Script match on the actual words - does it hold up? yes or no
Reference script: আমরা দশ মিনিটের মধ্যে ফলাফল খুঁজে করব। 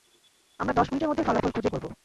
yes